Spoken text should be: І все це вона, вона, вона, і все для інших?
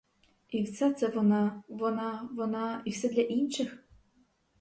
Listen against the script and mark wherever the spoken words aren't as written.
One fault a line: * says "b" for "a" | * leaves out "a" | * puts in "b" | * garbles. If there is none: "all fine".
all fine